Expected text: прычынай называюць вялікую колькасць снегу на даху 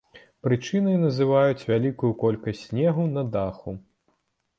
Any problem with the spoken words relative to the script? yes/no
no